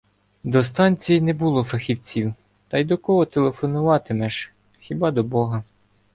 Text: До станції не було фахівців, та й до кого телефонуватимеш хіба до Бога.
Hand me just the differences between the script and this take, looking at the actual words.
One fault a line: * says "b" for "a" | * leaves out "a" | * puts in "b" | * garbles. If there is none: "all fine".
all fine